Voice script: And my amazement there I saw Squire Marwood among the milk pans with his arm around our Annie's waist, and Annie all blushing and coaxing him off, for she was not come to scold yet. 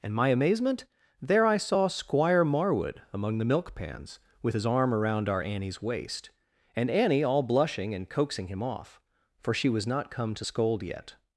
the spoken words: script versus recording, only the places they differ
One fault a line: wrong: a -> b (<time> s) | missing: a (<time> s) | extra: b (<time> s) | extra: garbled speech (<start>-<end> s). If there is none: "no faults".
no faults